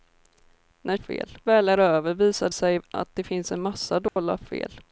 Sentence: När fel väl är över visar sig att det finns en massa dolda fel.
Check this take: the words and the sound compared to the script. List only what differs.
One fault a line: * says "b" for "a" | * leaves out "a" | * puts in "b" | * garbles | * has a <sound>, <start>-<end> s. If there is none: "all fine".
* has a dropout, 4.1-4.2 s